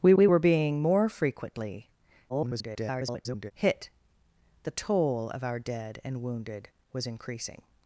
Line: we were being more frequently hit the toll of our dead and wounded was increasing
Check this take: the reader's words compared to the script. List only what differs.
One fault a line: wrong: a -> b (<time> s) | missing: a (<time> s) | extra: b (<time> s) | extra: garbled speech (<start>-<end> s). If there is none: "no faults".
extra: we (0.1 s)
extra: garbled speech (2.3-3.5 s)